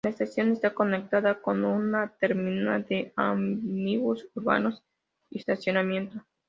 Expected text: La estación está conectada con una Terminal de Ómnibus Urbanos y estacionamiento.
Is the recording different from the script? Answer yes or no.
no